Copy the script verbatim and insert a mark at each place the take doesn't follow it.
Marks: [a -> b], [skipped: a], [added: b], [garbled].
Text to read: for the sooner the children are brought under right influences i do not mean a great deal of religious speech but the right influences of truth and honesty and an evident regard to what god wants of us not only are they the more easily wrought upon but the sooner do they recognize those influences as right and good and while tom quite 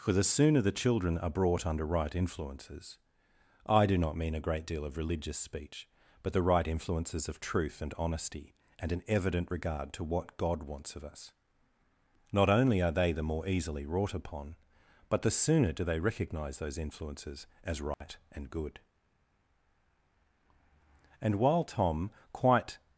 for the sooner the children are brought under right influences i do not mean a great deal of religious speech but the right influences of truth and honesty and an evident regard to what god wants of us not only are they the more easily wrought upon but the sooner do they recognize those influences as right and good and while tom quite